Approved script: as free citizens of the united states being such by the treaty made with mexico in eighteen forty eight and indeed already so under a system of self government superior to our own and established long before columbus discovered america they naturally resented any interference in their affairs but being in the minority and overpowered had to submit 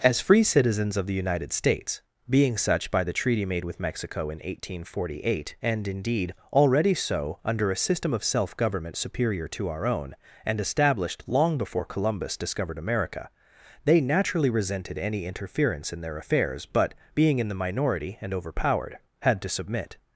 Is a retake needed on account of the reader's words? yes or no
no